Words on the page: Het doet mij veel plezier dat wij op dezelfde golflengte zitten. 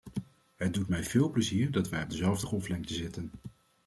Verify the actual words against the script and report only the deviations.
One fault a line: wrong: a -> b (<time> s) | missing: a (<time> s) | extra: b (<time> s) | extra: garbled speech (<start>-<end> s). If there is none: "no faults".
no faults